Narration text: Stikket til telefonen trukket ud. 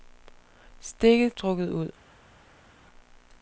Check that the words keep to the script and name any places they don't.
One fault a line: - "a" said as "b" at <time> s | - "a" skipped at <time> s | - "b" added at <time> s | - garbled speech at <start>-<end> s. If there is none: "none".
- "til telefonen" skipped at 1.3 s